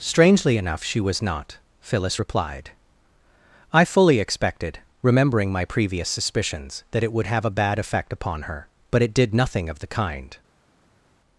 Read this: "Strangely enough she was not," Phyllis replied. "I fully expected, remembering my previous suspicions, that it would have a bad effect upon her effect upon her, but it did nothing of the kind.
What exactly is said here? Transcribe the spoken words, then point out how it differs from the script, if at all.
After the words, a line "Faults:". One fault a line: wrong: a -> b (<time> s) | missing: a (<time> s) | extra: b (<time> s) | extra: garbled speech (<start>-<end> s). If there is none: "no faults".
"Strangely enough she was not," Phyllis replied. "I fully expected, remembering my previous suspicions, that it would have a bad effect upon her, but it did nothing of the kind.
Faults:
missing: effect upon her (8.7 s)